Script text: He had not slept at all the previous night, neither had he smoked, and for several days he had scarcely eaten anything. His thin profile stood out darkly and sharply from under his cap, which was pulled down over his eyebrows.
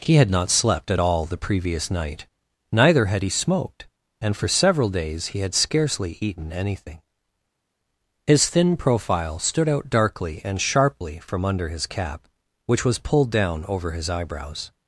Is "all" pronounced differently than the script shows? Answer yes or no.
no